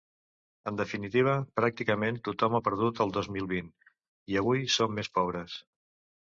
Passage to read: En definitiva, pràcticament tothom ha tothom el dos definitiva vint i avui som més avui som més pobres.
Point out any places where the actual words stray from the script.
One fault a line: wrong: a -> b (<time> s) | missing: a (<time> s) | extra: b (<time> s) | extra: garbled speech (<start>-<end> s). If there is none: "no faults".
wrong: tothom -> perdut (2.7 s)
wrong: definitiva -> mil (3.4 s)
missing: avui som més (5.1 s)